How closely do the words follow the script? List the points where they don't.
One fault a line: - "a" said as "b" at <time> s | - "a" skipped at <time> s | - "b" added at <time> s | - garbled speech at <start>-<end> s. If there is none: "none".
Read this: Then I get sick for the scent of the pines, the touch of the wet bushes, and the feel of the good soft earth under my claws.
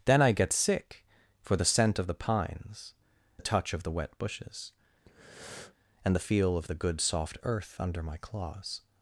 none